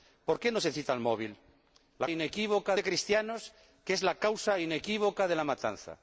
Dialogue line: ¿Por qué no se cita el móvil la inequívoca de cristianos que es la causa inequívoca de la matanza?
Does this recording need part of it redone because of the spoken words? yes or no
no